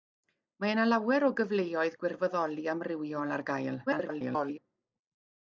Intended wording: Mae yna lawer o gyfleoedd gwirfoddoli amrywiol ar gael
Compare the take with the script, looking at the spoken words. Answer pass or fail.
fail